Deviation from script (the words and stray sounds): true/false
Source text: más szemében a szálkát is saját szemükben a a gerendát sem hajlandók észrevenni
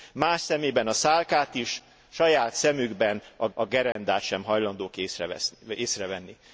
true